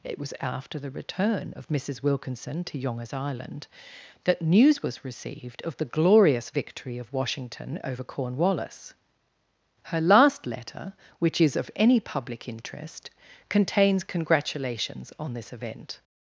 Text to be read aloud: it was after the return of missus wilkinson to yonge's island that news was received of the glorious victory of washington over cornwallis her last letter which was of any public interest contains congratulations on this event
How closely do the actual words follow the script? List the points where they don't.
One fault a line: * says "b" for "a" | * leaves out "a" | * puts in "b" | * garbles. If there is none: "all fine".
* says "is" for "was"